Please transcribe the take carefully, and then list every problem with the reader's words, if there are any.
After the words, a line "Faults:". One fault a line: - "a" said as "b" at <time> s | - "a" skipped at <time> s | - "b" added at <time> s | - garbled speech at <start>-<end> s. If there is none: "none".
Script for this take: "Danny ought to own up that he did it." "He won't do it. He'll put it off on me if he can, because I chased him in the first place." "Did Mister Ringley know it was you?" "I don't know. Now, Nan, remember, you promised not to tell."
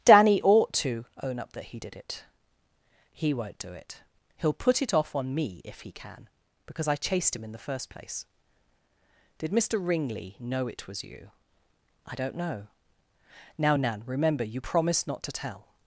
"Danny ought to own up that he did it." "He won't do it. He'll put it off on me if he can, because I chased him in the first place." "Did Mister Ringley know it was you?" "I don't know. Now, Nan, remember, you promised not to tell."
Faults:
none